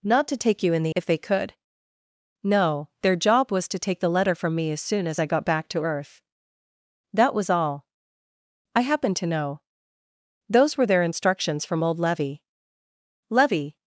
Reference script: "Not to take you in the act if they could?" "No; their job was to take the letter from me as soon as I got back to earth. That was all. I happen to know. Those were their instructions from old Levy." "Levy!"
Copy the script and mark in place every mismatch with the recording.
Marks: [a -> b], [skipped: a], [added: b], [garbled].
"Not to take you in the [skipped: act] if they could?" "No; their job was to take the letter from me as soon as I got back to earth. That was all. I happen to know. Those were their instructions from old Levy." "Levy!"